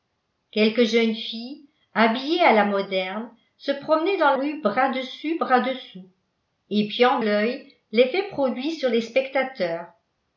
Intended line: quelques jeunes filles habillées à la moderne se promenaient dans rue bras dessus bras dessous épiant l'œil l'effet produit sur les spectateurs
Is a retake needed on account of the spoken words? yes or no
no